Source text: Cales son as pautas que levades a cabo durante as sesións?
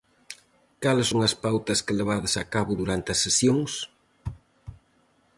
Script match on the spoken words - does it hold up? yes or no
yes